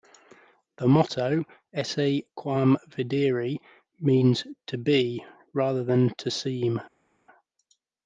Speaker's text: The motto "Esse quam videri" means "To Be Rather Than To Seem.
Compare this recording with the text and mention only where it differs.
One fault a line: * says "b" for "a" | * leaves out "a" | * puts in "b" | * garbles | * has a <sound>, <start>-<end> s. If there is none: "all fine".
all fine